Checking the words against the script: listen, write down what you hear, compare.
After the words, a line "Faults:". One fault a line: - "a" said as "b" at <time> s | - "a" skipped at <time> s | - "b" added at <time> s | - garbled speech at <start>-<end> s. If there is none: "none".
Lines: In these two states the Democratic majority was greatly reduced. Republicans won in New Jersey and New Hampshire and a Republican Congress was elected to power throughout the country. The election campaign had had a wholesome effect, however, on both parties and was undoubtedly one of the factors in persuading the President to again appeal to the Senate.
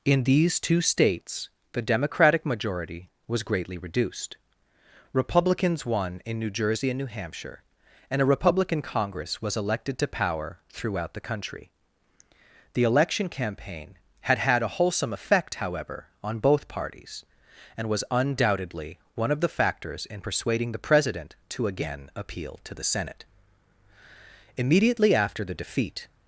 In these two states the Democratic majority was greatly reduced. Republicans won in New Jersey and New Hampshire and a Republican Congress was elected to power throughout the country. The election campaign had had a wholesome effect, however, on both parties and was undoubtedly one of the factors in persuading the President to again appeal to the Senate. Immediately after the defeat
Faults:
- "Immediately after the defeat" added at 24.6 s